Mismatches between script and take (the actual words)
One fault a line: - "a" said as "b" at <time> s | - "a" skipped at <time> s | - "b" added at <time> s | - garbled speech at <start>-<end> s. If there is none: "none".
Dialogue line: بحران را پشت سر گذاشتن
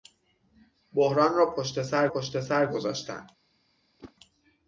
- "پشت سر" added at 2.1 s